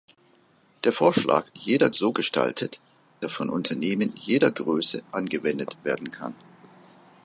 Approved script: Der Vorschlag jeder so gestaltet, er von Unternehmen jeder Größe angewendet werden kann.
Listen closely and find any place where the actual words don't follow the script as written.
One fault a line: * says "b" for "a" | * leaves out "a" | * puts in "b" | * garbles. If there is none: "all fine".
all fine